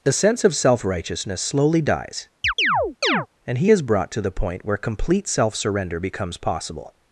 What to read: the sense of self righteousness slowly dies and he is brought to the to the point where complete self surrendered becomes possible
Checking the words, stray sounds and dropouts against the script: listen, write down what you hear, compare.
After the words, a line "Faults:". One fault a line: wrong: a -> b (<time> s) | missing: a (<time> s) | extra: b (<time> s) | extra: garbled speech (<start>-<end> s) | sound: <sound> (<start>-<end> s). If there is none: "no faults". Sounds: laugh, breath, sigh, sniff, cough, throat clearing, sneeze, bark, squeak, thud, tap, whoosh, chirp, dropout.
the sense of self righteousness slowly dies and he is brought to the point where complete self surrender becomes possible
Faults:
sound: chirp (2.4-3.3 s)
missing: to the (4.3 s)
wrong: surrendered -> surrender (5.5 s)